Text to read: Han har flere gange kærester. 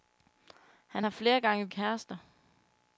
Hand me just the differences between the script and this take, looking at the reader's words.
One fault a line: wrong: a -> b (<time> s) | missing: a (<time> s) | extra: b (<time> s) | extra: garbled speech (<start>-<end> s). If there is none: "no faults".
no faults